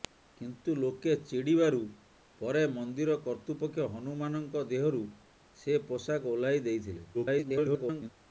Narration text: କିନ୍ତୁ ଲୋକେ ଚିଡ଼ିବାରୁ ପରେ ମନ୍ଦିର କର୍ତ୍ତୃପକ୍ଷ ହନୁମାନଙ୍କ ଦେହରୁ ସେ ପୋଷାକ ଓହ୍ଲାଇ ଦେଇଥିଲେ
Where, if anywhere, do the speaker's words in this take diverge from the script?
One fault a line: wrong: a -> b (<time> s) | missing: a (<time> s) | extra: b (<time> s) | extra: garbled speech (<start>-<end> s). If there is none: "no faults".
extra: garbled speech (7.1-8.1 s)